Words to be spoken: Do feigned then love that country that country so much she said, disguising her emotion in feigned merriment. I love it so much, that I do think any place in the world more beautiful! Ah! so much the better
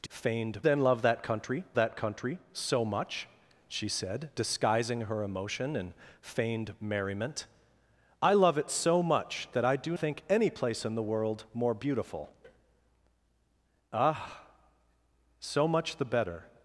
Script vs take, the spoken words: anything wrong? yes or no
no